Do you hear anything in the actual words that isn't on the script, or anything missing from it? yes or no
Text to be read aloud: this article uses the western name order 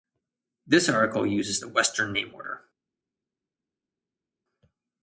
no